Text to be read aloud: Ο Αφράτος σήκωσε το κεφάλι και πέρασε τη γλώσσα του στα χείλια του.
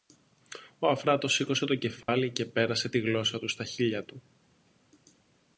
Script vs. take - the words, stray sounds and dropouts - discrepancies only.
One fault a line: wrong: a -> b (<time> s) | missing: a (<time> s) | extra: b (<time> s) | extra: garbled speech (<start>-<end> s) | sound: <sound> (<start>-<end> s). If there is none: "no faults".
sound: dropout (2.0-2.1 s)